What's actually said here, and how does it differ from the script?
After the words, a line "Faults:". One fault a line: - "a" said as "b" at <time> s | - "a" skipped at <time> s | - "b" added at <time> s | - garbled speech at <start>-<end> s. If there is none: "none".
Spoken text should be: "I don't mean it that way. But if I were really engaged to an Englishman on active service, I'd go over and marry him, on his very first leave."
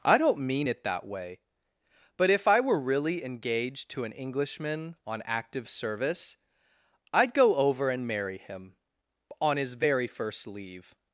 "I don't mean it that way. But if I were really engaged to an Englishman on active service, I'd go over and marry him, on his very first leave."
Faults:
none